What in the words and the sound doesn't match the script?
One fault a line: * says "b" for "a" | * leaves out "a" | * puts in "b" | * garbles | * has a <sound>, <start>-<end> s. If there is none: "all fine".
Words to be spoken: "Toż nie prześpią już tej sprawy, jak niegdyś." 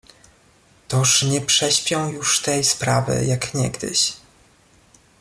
all fine